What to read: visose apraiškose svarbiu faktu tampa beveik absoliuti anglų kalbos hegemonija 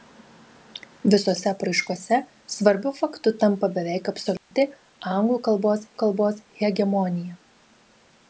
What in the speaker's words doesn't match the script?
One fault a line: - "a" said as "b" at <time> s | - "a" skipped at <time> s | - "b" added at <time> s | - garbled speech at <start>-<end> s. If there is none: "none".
- "kalbos" added at 6.0 s